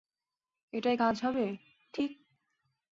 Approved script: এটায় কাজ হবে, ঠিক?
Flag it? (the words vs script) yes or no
no